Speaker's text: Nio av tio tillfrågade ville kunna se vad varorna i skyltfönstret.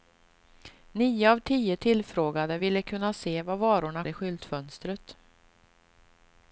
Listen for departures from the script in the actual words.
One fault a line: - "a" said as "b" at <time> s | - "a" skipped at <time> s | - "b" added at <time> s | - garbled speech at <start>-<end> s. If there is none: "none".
none